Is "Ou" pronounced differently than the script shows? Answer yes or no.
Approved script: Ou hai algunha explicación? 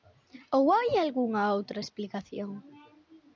no